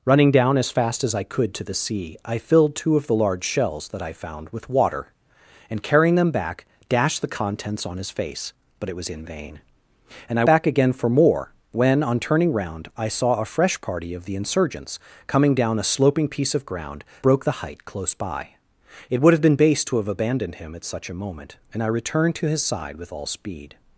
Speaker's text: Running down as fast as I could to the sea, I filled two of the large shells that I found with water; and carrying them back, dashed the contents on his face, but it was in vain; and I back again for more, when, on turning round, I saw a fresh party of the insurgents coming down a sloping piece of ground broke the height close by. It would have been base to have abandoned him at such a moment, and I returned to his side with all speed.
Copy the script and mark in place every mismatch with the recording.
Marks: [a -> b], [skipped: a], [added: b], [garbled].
Running down as fast as I could to the sea, I filled two of the large shells that I found with water; and carrying them back, dashed the contents on his face, but it was in vain; and I back again for more, when, on turning round, I saw a fresh party of the insurgents coming down a sloping piece of ground broke the height close by. It would have been base to have abandoned him at such a moment, and I returned to his side with all speed.